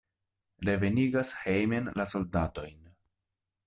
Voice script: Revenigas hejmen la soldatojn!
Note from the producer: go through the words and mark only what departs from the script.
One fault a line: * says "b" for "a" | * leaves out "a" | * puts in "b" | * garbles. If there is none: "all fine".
all fine